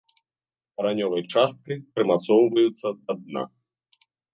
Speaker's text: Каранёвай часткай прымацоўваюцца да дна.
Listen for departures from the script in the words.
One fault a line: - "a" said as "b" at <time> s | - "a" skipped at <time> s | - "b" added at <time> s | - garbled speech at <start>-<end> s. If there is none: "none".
none